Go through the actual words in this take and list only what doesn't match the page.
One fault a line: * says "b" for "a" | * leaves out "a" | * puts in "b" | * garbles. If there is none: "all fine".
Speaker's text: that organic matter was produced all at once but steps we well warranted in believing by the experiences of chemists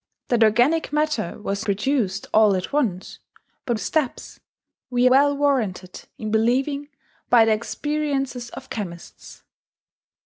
all fine